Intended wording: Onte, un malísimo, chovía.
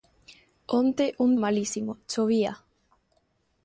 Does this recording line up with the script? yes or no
yes